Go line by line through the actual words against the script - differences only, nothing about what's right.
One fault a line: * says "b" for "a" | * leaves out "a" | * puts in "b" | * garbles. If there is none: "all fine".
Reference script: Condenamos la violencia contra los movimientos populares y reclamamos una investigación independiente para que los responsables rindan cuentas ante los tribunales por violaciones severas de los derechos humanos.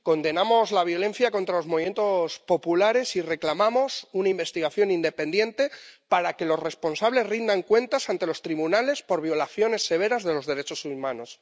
all fine